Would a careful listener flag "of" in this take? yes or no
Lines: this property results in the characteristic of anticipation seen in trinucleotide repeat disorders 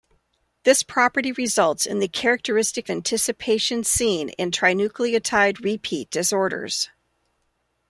yes